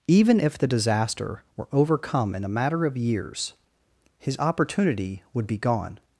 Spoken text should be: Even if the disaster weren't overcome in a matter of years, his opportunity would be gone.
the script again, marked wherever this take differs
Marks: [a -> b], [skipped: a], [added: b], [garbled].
Even if the disaster [weren't -> were] overcome in a matter of years, his opportunity would be gone.